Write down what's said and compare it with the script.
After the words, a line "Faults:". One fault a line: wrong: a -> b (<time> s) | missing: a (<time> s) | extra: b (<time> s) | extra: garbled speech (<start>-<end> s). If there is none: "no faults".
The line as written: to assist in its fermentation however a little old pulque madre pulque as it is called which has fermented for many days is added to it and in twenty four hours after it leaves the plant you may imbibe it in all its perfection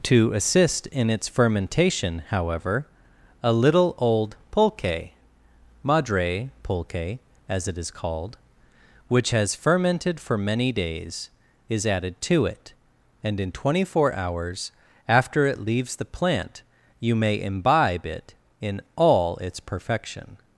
to assist in its fermentation however a little old pulque madre pulque as it is called which has fermented for many days is added to it and in twenty four hours after it leaves the plant you may imbibe it in all its perfection
Faults:
no faults